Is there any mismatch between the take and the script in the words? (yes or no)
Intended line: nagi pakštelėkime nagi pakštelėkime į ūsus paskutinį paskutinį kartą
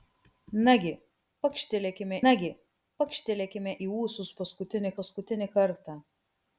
no